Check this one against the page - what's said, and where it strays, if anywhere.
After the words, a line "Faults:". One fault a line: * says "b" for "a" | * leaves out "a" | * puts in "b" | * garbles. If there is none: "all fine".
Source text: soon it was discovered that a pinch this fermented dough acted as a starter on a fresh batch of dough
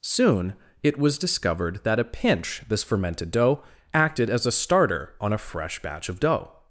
soon it was discovered that a pinch this fermented dough acted as a starter on a fresh batch of dough
Faults:
all fine